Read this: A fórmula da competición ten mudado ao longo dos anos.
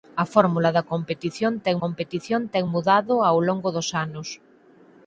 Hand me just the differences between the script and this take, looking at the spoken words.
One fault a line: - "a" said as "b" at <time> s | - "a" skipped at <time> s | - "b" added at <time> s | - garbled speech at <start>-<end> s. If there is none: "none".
- "competición ten" added at 1.8 s